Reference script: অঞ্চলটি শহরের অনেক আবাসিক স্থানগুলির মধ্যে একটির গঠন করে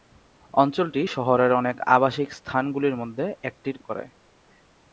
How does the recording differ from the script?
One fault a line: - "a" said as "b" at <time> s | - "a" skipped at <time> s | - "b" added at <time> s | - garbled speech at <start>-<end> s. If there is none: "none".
- "গঠন" skipped at 3.8 s